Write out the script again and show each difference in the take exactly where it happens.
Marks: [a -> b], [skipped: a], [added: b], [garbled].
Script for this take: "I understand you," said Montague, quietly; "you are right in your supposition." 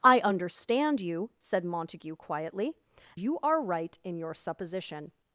"I understand you," said Montague, quietly; "you are right in your supposition."